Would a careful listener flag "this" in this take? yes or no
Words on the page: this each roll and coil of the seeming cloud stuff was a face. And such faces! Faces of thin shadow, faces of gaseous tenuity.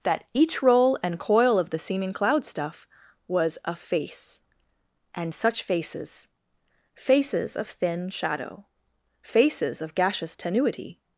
yes